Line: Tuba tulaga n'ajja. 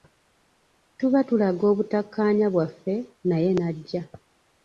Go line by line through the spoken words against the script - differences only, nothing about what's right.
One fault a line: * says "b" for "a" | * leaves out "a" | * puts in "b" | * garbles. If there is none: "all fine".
* puts in "obutakkaanya bwaffe naye"